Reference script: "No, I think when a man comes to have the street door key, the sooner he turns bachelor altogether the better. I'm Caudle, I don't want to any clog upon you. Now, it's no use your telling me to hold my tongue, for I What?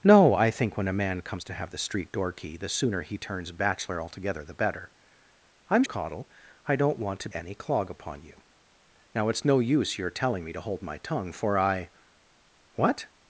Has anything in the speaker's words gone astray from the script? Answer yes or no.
no